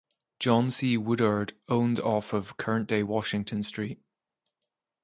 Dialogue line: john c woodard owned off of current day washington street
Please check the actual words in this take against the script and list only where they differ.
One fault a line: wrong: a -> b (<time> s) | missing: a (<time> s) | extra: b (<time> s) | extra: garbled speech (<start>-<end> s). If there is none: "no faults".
no faults